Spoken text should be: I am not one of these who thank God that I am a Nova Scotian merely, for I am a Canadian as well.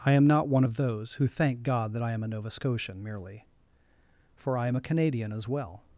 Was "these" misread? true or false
true